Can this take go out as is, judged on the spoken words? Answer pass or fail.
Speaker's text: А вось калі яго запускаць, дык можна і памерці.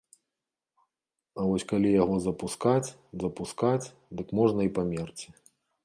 fail